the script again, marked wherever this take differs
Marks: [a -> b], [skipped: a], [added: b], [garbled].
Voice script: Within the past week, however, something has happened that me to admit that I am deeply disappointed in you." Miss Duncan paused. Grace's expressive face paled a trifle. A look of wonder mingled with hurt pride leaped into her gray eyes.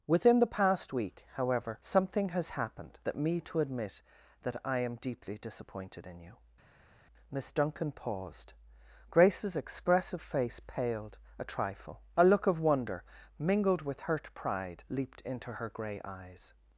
Within the past week, however, something has happened that me to admit that I am deeply disappointed in you." Miss Duncan paused. Grace's expressive face paled a trifle. A look of wonder mingled with hurt pride leaped into her gray eyes.